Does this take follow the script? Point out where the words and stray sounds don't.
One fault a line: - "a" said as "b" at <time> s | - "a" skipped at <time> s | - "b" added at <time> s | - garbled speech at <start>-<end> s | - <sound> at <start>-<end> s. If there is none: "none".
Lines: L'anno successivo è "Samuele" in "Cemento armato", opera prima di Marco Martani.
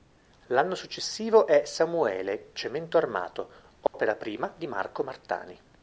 - "in" skipped at 2.5 s
- dropout at 3.9-3.9 s